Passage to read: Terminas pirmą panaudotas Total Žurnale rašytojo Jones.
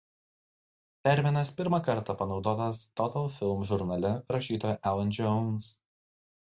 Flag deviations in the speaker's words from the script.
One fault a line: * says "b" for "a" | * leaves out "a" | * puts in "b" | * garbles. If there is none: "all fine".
* puts in "kartą"
* puts in "Film"
* puts in "Alan"